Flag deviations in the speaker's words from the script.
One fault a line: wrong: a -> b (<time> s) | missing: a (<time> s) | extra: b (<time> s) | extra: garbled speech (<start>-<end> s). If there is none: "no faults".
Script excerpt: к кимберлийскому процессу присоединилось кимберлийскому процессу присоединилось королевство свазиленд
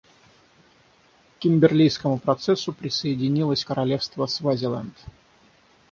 missing: кимберлийскому процессу присоединилось (3.6 s)